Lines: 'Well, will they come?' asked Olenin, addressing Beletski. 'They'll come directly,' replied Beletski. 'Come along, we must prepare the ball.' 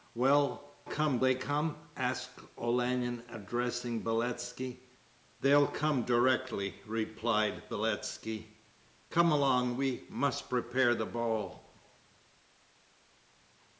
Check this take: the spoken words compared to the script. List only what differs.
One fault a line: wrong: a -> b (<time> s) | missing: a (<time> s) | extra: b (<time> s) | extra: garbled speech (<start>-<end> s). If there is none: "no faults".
wrong: will -> come (0.8 s)